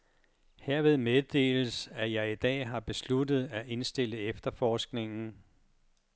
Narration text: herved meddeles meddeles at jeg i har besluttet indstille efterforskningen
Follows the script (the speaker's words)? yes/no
no